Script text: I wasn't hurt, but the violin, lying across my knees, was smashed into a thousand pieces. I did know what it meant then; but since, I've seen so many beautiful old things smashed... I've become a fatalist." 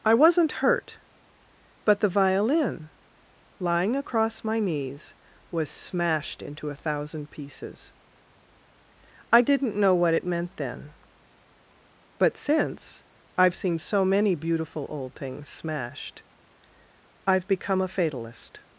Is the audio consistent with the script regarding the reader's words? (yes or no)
no